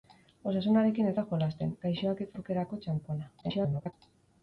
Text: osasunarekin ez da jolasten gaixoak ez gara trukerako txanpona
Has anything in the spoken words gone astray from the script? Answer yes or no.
yes